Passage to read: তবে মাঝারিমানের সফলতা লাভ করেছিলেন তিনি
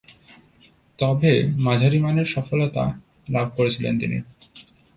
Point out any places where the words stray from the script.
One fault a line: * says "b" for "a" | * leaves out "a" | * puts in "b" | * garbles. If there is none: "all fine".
all fine